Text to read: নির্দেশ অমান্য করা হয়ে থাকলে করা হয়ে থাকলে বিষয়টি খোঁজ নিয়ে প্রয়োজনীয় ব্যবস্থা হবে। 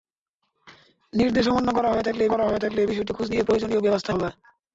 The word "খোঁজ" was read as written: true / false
true